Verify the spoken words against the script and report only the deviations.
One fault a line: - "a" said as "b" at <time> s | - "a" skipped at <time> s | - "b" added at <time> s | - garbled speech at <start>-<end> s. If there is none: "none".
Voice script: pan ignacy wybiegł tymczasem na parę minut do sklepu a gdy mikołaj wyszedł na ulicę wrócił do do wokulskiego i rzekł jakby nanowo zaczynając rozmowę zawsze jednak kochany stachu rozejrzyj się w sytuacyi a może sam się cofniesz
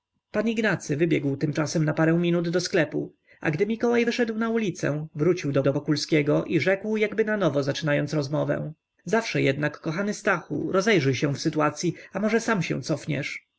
none